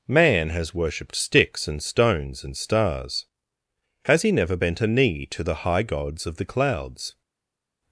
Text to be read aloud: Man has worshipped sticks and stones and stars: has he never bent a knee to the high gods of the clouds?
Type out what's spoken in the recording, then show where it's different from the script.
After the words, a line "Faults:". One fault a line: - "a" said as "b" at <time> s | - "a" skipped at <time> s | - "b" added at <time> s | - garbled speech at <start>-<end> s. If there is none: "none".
Man has worshipped sticks and stones and stars: has he never bent a knee to the high gods of the clouds?
Faults:
none